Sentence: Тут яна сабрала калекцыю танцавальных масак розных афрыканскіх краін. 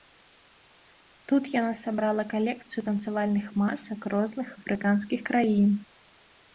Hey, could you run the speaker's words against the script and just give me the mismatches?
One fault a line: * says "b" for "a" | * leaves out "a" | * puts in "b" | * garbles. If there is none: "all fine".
all fine